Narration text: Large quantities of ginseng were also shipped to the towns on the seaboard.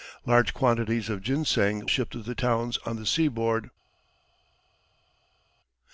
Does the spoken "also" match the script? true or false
false